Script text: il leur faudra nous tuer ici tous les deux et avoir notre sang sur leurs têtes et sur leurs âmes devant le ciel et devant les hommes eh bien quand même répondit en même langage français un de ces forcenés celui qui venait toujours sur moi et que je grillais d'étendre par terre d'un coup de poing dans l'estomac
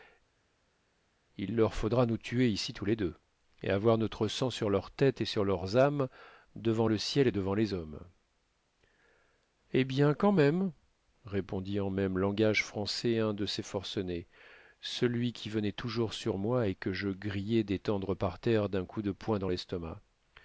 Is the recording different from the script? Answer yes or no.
no